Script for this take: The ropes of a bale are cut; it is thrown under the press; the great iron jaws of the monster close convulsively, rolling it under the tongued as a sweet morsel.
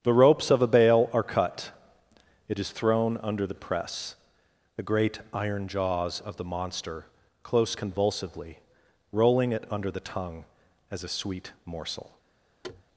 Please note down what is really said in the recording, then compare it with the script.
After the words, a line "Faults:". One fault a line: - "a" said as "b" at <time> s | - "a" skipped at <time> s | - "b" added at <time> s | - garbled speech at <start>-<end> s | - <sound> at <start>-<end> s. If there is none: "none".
The ropes of a bale are cut; it is thrown under the press; the great iron jaws of the monster close convulsively, rolling it under the tongue as a sweet morsel.
Faults:
- "tongued" said as "tongue" at 10.1 s
- thud at 12.6-12.8 s